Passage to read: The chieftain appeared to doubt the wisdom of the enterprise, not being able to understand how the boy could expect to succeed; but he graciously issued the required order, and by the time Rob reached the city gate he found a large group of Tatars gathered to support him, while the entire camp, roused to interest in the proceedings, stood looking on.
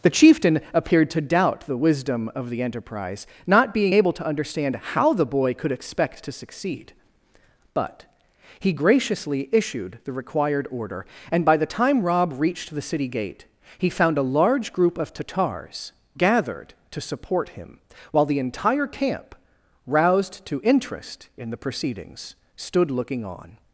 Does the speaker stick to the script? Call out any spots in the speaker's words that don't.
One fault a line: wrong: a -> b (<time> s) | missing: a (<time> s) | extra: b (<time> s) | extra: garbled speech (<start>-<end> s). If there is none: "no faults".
no faults